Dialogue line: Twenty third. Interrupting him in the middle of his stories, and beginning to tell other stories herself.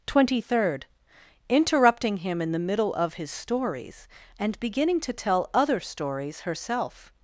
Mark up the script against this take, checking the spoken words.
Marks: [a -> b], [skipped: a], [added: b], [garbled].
Twenty third. Interrupting him in the middle of his stories, and beginning to tell other stories herself.